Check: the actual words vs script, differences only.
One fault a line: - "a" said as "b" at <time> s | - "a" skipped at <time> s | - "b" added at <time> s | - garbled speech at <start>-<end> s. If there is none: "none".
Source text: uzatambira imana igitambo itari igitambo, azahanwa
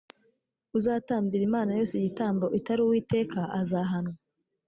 - "yose" added at 1.8 s
- "igitambo" said as "uwiteka" at 2.8 s